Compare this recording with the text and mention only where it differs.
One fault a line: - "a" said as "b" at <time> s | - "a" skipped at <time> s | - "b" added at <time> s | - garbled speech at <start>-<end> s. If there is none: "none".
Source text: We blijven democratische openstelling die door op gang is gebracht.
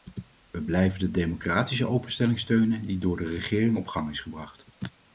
- "de" added at 1.0 s
- "steunen" added at 2.4 s
- "de regering" added at 3.2 s